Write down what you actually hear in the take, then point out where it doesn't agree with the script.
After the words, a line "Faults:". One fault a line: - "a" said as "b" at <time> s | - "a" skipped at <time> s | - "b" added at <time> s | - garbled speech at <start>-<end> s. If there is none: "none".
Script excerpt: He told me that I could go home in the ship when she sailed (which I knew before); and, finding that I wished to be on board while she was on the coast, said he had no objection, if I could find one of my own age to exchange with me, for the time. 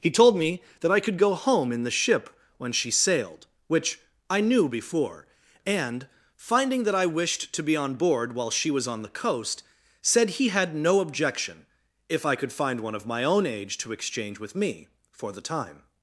He told me that I could go home in the ship when she sailed (which I knew before); and, finding that I wished to be on board while she was on the coast, said he had no objection, if I could find one of my own age to exchange with me, for the time.
Faults:
none